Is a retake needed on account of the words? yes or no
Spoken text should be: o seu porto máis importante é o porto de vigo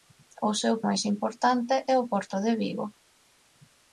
yes